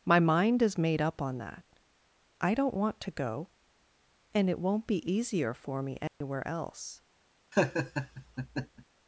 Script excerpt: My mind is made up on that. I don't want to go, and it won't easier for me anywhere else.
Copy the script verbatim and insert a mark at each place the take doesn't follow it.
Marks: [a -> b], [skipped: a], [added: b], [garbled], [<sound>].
My mind is made up on that. I don't want to go, and it won't [added: be] easier for me anywhere [dropout] else. [laugh]